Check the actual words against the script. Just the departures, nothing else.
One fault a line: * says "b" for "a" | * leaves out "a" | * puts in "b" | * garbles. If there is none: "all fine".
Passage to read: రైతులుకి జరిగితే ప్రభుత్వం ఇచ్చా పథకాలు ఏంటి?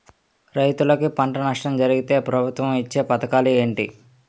* puts in "పంట నష్టం"